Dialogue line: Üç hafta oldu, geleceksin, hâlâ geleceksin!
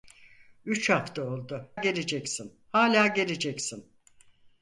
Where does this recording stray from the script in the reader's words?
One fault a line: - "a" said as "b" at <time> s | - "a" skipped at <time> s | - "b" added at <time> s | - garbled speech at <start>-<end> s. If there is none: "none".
none